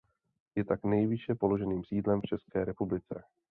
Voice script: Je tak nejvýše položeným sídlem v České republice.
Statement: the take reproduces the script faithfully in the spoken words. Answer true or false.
true